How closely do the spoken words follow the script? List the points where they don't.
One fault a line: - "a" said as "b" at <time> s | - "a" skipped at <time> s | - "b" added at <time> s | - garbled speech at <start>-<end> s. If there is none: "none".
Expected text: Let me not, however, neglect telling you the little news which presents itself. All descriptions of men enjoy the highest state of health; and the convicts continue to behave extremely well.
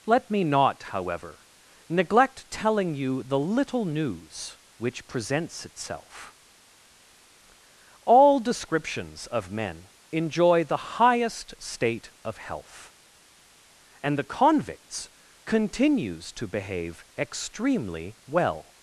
- "continue" said as "continues" at 15.4 s